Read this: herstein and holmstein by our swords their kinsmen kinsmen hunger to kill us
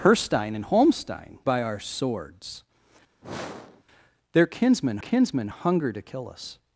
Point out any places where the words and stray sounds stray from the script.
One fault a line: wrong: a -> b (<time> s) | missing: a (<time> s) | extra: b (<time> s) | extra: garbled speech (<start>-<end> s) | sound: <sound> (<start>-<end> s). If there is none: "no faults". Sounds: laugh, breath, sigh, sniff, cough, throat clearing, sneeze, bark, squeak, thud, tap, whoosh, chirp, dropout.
sound: sniff (3.2-3.8 s)